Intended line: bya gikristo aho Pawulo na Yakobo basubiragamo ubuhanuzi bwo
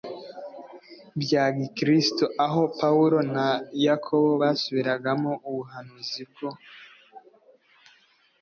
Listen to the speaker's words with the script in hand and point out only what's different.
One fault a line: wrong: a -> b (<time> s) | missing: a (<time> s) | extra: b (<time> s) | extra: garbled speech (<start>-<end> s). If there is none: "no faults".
no faults